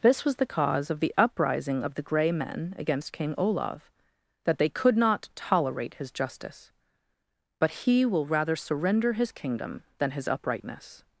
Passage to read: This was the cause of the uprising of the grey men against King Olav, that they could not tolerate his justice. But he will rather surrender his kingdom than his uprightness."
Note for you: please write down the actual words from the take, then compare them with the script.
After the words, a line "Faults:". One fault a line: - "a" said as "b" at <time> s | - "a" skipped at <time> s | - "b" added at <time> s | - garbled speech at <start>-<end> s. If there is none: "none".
This was the cause of the uprising of the grey men against King Olav, that they could not tolerate his justice. But he will rather surrender his kingdom than his uprightness."
Faults:
none